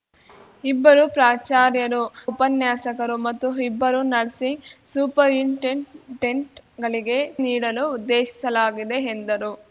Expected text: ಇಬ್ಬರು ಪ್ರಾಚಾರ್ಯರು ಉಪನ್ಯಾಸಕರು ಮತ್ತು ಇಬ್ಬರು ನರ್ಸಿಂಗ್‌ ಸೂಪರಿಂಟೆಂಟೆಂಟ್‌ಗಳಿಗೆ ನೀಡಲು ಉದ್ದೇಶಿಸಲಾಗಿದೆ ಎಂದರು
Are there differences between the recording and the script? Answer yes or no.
no